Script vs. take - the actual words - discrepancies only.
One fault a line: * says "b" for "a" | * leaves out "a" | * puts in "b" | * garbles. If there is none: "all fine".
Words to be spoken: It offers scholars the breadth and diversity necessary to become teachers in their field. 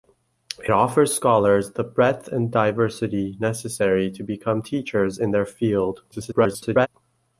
* garbles